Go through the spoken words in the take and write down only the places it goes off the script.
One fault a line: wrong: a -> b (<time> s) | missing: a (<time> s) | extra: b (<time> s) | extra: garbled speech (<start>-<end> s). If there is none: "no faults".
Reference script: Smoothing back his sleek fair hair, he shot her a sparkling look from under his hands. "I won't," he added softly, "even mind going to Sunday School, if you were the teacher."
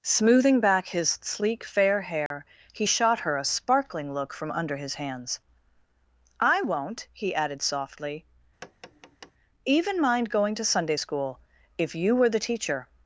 no faults